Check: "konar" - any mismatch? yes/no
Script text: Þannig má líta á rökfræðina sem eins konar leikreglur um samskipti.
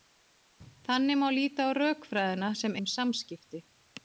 yes